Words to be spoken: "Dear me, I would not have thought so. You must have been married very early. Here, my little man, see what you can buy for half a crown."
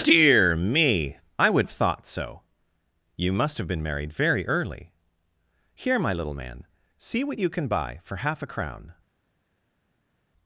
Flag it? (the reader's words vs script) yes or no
yes